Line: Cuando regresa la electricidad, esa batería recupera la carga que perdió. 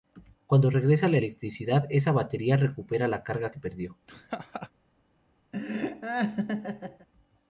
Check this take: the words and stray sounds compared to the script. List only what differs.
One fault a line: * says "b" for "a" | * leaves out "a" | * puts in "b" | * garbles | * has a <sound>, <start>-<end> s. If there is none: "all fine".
* has a laugh, 4.1-4.7 s
* has a laugh, 5.5-7.1 s